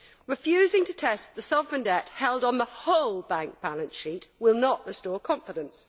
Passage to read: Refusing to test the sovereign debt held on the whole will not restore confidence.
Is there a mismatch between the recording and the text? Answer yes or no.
yes